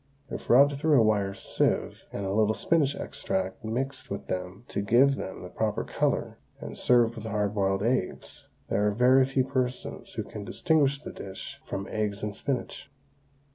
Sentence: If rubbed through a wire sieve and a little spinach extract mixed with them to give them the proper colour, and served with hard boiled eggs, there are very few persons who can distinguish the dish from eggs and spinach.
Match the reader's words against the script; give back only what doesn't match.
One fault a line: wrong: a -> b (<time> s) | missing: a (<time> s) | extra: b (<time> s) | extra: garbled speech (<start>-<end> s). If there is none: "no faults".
no faults